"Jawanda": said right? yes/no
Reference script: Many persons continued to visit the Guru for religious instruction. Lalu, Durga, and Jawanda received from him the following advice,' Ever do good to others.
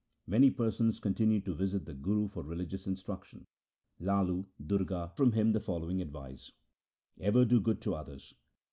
no